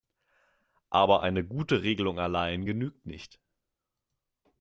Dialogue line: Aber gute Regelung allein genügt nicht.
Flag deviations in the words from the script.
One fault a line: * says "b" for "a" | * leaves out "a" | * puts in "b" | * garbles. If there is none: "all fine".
* puts in "eine"